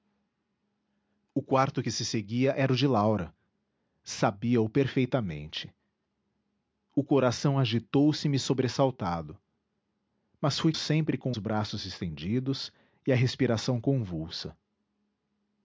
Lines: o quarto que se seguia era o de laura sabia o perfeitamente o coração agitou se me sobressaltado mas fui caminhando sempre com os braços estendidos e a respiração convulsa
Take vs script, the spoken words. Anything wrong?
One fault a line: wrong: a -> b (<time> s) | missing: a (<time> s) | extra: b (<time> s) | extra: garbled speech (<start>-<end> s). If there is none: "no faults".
missing: caminhando (10.7 s)
missing: os (11.3 s)